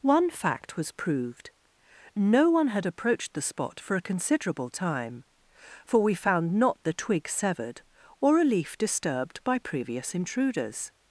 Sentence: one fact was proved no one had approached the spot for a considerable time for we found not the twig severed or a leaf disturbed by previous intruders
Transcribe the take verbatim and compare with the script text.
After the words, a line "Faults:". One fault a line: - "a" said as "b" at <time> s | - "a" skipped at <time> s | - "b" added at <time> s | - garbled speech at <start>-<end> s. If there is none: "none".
one fact was proved no one had approached the spot for a considerable time for we found not the twig severed or a leaf disturbed by previous intruders
Faults:
none